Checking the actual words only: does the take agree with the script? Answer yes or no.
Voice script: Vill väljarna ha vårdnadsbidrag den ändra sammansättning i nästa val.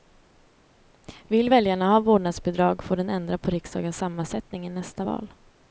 no